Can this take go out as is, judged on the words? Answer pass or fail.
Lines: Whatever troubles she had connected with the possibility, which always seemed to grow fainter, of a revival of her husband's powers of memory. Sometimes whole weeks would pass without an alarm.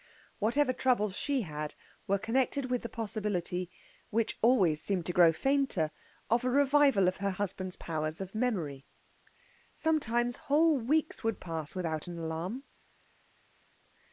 fail